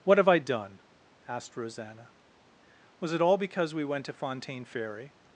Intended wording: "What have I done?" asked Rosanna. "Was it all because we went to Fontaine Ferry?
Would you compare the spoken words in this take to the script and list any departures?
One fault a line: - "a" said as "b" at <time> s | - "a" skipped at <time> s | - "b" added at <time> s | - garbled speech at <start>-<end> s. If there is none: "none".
none